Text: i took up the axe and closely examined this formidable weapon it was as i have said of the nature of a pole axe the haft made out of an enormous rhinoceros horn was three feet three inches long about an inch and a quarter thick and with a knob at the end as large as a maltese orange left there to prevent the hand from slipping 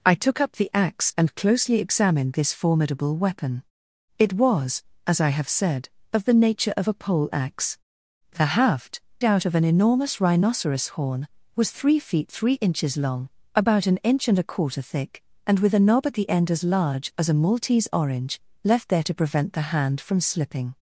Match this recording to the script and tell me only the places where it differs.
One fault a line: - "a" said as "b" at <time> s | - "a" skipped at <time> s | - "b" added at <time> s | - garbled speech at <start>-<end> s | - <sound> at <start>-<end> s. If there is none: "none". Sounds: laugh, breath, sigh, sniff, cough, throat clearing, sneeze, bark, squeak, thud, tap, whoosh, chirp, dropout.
- "made" skipped at 9.0 s